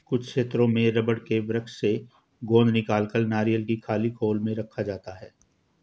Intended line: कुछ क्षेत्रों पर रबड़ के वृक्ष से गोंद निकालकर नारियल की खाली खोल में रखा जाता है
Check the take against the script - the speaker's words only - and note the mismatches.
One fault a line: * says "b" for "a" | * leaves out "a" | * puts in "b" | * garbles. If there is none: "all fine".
* says "में" for "पर"